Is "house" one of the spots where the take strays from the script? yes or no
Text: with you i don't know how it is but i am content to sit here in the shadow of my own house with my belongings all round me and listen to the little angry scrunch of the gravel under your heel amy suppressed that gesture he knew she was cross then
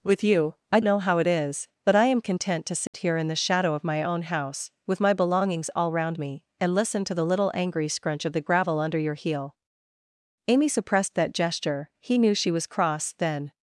no